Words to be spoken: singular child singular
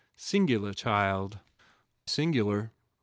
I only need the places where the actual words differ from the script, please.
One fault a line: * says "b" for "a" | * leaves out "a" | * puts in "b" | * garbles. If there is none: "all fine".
all fine